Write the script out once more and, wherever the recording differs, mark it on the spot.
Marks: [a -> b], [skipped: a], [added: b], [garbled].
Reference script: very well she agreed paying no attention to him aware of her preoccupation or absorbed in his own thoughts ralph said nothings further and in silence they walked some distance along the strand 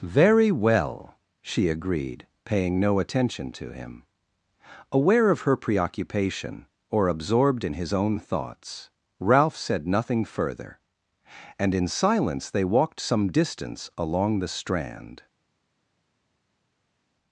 very well she agreed paying no attention to him aware of her preoccupation or absorbed in his own thoughts ralph said [nothings -> nothing] further and in silence they walked some distance along the strand